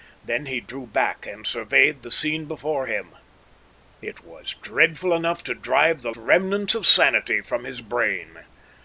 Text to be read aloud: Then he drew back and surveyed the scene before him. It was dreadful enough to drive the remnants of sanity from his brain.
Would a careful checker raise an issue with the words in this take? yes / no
no